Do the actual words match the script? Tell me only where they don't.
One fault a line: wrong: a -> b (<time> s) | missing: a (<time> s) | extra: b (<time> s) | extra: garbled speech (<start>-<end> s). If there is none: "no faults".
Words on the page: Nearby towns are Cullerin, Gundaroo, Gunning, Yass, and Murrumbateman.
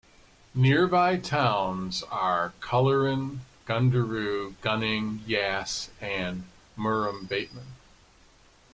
no faults